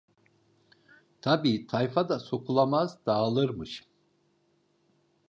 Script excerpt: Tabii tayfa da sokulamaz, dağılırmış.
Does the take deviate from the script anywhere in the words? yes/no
no